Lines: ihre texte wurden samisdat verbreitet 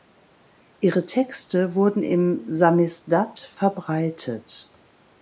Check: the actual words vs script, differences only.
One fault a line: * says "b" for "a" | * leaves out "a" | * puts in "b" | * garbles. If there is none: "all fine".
* puts in "im"